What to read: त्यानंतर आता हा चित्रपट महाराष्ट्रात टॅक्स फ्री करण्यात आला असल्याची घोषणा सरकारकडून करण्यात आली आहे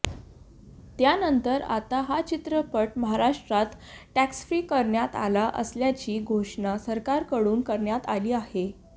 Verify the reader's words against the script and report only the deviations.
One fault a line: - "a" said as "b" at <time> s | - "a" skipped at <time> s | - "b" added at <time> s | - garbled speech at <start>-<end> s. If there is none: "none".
none